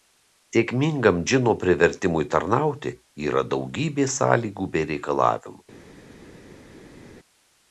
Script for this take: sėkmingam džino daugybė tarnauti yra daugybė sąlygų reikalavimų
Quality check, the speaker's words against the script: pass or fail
fail